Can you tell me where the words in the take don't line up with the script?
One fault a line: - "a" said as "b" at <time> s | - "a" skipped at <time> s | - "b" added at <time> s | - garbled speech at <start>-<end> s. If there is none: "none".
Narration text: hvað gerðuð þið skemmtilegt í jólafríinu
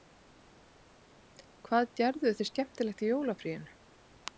none